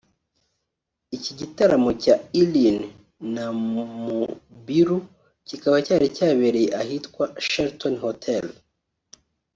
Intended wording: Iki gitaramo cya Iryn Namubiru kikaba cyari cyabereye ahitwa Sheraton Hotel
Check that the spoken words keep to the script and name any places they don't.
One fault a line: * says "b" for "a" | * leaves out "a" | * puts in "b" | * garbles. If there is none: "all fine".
all fine